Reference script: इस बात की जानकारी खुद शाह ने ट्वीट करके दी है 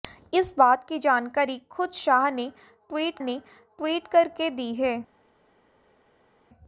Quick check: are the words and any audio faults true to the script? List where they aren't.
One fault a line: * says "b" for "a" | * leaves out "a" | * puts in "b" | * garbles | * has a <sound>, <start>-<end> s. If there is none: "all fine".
* puts in "ने ट्वीट"